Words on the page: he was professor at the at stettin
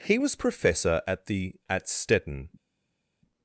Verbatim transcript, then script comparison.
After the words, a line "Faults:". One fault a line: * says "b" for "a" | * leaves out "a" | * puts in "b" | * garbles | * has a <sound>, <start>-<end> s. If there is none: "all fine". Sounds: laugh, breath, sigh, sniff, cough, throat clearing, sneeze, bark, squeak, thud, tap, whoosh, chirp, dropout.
he was professor at the at stettin
Faults:
all fine